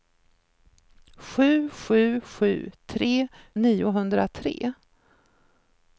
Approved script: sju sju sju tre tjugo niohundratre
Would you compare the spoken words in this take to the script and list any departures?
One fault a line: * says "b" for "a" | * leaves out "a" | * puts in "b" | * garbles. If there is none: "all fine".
* leaves out "tjugo"